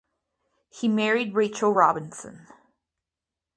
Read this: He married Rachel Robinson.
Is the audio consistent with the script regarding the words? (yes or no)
yes